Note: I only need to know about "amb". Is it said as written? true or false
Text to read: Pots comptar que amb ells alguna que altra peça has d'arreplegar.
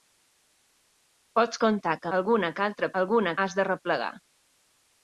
false